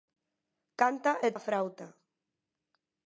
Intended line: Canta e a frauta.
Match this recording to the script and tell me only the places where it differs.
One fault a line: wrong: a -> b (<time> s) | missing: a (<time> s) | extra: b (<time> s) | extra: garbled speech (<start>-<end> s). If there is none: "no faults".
no faults